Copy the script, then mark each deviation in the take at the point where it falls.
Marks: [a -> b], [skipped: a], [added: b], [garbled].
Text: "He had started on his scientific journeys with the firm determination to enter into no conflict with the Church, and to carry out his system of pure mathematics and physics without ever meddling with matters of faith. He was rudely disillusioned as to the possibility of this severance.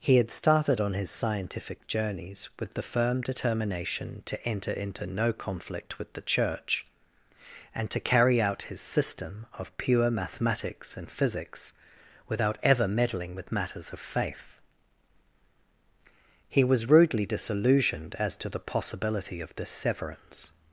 "He had started on his scientific journeys with the firm determination to enter into no conflict with the Church, and to carry out his system of pure mathematics and physics without ever meddling with matters of faith. He was rudely disillusioned as to the possibility of this severance.